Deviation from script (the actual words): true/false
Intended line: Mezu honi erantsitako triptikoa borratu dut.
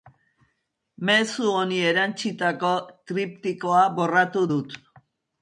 false